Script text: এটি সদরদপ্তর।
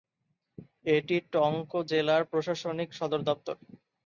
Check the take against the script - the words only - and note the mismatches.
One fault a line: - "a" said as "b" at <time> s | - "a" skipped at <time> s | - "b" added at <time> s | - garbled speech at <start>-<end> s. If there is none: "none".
- "টঙ্ক জেলার প্রশাসনিক" added at 1.3 s